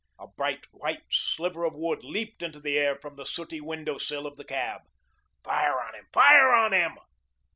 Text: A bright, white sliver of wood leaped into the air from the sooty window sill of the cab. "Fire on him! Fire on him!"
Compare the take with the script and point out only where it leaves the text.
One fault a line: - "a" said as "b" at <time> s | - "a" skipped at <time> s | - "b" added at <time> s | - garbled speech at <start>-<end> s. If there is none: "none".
none